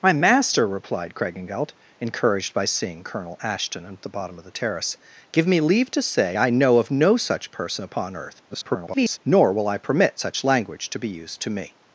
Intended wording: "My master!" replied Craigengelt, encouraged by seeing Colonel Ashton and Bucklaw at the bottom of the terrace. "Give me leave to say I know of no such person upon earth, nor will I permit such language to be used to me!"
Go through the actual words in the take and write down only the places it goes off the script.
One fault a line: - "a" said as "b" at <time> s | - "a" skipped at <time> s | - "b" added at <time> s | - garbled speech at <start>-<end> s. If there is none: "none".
- "Bucklaw" skipped at 4.0 s
- garbled speech at 8.5-9.2 s